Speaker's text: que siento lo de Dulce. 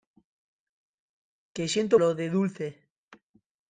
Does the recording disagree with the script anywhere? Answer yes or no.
no